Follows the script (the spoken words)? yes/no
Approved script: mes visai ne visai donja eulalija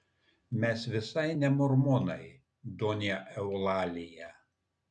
no